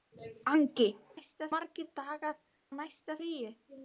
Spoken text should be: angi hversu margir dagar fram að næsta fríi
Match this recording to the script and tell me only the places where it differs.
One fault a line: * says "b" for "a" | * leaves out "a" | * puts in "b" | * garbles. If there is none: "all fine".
* says "næsta" for "hversu"
* leaves out "fram"